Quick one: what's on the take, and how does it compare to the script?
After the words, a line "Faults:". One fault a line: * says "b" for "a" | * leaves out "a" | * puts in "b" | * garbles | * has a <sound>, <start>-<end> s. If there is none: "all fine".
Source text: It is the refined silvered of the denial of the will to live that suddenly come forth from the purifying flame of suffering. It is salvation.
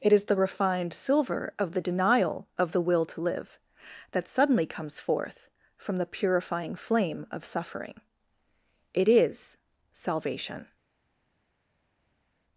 It is the refined silver of the denial of the will to live that suddenly comes forth from the purifying flame of suffering. It is salvation.
Faults:
* says "silver" for "silvered"
* says "comes" for "come"